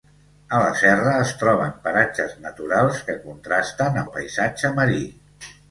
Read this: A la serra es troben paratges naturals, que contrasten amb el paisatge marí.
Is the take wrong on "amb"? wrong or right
wrong